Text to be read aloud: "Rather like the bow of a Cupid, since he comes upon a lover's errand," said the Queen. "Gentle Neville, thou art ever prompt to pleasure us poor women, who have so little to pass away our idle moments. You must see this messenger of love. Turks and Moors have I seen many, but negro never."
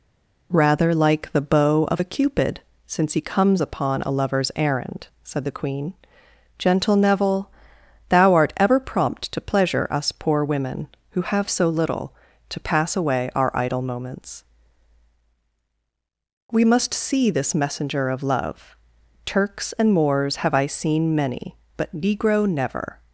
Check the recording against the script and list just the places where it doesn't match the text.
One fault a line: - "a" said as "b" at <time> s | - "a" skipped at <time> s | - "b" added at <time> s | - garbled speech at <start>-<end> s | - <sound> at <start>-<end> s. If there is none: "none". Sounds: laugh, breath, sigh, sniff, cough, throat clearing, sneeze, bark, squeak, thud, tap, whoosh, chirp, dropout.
- "You" said as "We" at 16.5 s